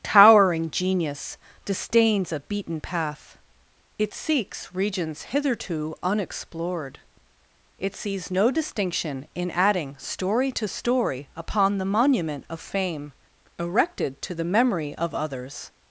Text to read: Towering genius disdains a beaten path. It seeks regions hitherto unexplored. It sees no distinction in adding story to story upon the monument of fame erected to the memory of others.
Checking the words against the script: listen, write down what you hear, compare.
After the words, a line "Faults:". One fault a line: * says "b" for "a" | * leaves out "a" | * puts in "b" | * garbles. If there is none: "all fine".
Towering genius disdains a beaten path. It seeks regions hitherto unexplored. It sees no distinction in adding story to story upon the monument of fame erected to the memory of others.
Faults:
all fine